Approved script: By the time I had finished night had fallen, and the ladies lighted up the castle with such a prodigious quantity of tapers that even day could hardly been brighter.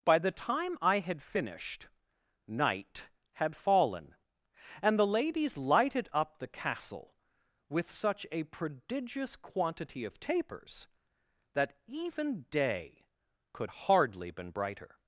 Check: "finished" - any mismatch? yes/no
no